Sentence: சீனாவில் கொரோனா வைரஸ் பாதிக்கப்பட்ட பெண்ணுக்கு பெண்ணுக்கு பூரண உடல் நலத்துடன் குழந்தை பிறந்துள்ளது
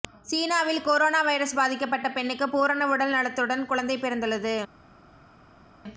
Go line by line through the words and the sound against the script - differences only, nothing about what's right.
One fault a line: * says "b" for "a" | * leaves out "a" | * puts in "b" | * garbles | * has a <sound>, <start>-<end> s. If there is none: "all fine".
* leaves out "பெண்ணுக்கு"